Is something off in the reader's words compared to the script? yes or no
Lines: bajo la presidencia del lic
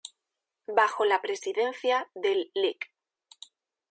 no